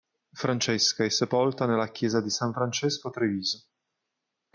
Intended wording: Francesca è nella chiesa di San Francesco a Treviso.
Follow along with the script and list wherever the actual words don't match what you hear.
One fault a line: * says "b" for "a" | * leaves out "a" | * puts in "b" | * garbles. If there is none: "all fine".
* puts in "sepolta"